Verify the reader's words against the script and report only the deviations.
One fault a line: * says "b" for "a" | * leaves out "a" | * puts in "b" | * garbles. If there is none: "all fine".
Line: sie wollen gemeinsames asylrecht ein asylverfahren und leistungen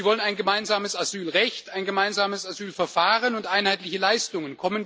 * puts in "ein"
* puts in "gemeinsames"
* puts in "einheitliche"